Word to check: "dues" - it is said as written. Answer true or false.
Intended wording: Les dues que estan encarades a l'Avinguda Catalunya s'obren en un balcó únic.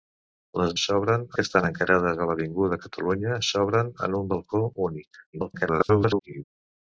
false